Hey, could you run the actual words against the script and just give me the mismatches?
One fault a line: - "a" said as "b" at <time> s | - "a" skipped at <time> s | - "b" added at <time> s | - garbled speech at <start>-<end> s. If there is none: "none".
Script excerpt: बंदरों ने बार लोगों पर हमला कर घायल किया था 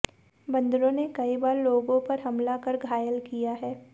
- "कई" added at 1.1 s
- "था" said as "है" at 3.5 s